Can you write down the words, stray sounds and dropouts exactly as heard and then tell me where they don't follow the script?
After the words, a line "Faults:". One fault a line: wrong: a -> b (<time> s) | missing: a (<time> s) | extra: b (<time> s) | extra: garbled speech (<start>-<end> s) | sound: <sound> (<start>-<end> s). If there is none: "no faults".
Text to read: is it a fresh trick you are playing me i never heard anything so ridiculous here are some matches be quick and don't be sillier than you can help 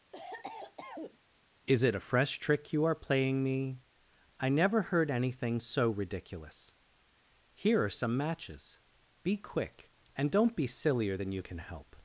is it a fresh trick you are playing me i never heard anything so ridiculous here are some matches be quick and don't be sillier than you can help
Faults:
sound: cough (0.1-1.2 s)